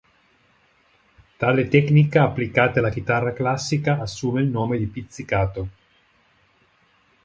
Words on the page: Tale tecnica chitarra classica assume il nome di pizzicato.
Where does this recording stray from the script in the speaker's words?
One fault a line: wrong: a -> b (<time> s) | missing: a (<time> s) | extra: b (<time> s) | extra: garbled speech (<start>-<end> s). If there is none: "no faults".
extra: applicata alla (2.2 s)